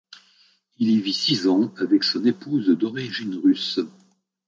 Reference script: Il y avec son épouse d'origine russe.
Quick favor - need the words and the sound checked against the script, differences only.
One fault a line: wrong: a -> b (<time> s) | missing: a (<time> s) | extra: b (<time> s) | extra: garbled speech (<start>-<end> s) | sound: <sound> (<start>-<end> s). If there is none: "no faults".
extra: vit six ans (1.0 s)